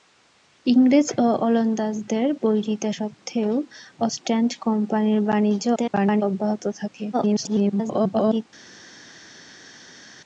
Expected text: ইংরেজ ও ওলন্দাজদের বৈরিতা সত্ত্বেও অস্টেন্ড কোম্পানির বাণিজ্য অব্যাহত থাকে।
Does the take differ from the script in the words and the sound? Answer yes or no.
yes